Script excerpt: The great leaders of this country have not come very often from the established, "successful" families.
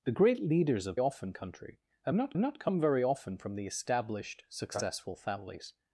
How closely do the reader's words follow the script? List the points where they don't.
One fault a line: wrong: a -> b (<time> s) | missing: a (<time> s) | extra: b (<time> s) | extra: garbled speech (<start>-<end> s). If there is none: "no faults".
wrong: this -> often (1.0 s)
extra: not (2.4 s)